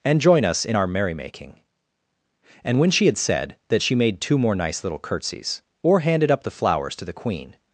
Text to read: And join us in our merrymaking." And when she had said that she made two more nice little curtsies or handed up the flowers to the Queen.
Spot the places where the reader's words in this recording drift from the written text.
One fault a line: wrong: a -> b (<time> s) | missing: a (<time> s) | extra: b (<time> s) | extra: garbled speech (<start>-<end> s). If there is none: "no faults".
no faults